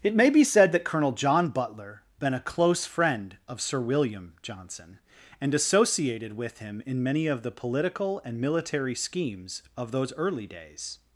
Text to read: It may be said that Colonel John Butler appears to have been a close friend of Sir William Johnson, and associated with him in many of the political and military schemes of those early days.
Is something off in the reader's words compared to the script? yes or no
yes